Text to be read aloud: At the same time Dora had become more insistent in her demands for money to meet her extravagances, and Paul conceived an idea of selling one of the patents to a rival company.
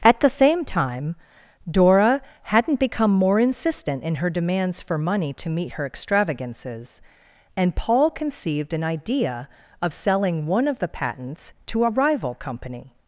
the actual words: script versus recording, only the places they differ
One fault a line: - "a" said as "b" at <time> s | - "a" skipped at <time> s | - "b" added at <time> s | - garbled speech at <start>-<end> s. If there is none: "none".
- "had" said as "hadn't" at 2.4 s